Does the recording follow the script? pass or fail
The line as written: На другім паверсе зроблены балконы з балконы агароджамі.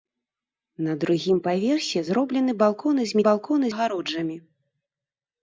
pass